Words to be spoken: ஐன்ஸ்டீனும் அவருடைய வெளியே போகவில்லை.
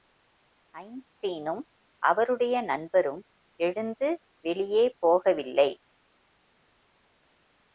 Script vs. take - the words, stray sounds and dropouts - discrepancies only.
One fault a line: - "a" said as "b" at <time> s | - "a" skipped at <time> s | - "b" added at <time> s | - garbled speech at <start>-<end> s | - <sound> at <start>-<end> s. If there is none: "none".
- "நண்பரும் எழுந்து" added at 2.6 s